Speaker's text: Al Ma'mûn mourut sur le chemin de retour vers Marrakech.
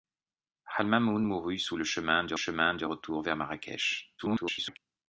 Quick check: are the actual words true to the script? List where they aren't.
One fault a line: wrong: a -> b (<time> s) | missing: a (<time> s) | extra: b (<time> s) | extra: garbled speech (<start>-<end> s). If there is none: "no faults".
extra: chemin de (2.3 s)
extra: garbled speech (4.2-4.8 s)